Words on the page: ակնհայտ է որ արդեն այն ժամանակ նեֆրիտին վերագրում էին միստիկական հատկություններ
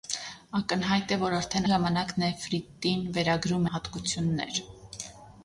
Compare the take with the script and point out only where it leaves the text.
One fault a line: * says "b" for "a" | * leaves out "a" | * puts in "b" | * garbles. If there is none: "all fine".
* leaves out "այն"
* leaves out "էին միստիկական"